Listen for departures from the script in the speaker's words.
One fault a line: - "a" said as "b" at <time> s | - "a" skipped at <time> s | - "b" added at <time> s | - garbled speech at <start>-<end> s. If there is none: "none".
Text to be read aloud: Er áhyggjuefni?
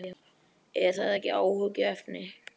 - "það ekki" added at 1.0 s